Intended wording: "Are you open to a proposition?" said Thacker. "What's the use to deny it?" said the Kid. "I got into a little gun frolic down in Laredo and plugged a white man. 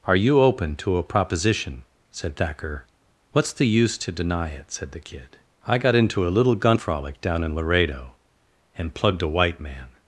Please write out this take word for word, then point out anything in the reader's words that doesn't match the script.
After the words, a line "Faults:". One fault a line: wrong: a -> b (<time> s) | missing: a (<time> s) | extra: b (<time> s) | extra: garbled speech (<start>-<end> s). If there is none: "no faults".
"Are you open to a proposition?" said Thacker. "What's the use to deny it?" said the Kid. "I got into a little gun frolic down in Laredo and plugged a white man.
Faults:
no faults